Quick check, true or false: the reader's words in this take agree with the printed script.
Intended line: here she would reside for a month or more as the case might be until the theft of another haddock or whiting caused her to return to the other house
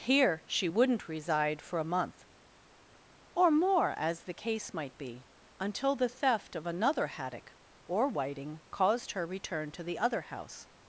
false